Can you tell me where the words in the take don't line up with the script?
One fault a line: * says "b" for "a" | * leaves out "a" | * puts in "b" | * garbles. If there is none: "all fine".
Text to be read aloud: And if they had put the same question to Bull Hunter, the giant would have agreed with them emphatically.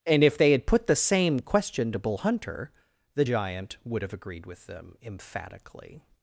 all fine